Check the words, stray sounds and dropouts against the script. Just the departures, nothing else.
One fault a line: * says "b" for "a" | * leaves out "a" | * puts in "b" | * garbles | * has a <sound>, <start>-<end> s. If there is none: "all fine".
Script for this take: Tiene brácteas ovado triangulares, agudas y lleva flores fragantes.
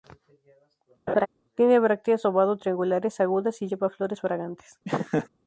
* has a laugh, 1.1-1.3 s
* has a laugh, 4.8-5.3 s